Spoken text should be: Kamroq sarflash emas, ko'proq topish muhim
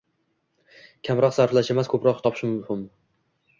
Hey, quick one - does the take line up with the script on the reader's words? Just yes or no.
yes